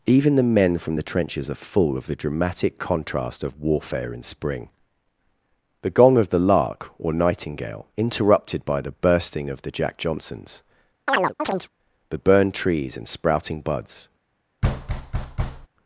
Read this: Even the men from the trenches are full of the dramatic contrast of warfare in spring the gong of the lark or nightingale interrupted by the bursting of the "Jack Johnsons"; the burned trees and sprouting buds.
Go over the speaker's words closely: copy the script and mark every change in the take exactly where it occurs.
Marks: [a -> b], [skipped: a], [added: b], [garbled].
Even the men from the trenches are full of the dramatic contrast of warfare in spring the gong of the lark or nightingale interrupted by the bursting of the "Jack Johnsons"; the burned trees and sprouting buds.